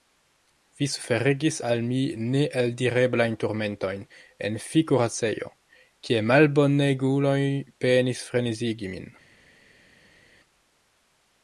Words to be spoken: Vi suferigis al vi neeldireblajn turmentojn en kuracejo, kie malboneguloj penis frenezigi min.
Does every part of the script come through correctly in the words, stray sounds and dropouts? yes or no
no